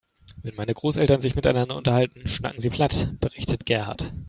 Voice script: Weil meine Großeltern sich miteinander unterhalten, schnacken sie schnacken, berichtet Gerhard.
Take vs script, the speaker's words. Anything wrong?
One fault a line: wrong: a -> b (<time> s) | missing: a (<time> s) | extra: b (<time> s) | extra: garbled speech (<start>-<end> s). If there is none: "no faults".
wrong: Weil -> Wenn (0.4 s)
wrong: schnacken -> platt (2.7 s)